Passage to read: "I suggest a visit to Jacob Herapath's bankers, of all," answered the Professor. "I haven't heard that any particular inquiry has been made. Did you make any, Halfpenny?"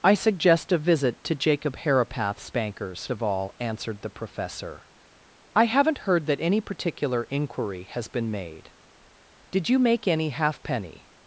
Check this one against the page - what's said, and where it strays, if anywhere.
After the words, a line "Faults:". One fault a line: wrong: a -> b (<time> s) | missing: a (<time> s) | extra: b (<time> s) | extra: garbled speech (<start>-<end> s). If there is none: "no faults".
"I suggest a visit to Jacob Herapath's bankers, of all," answered the Professor. "I haven't heard that any particular inquiry has been made. Did you make any, Halfpenny?"
Faults:
no faults